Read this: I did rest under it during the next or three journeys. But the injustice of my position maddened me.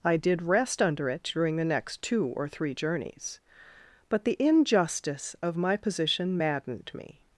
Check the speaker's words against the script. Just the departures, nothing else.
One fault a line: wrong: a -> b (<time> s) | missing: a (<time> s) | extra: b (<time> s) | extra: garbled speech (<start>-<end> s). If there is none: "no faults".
extra: two (2.0 s)